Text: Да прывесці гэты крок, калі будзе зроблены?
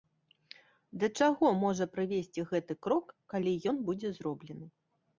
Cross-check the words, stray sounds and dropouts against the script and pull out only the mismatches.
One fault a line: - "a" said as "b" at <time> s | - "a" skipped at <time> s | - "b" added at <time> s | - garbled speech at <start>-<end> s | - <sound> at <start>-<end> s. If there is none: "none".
- "чаго можа" added at 1.2 s
- "ён" added at 3.7 s